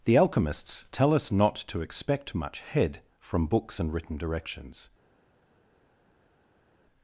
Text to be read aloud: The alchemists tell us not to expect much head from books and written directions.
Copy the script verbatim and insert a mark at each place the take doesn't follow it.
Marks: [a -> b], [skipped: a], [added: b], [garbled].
The alchemists tell us not to expect much head from books and written directions.